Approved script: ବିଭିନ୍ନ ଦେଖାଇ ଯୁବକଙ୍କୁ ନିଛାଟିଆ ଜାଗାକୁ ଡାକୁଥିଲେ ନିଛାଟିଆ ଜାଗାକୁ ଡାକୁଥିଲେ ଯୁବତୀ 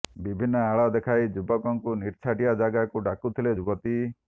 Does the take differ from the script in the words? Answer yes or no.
yes